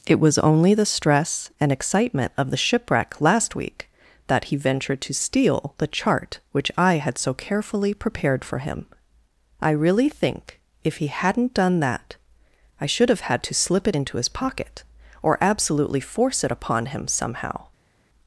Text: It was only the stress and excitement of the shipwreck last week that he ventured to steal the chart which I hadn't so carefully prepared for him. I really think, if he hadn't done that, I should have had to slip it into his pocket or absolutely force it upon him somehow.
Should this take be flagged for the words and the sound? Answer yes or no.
yes